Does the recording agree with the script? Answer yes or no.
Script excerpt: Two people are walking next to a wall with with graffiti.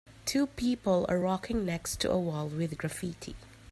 no